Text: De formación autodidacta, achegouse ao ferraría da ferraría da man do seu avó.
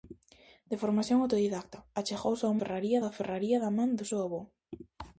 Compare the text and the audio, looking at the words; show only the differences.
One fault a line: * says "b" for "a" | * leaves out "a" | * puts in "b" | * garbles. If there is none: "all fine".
all fine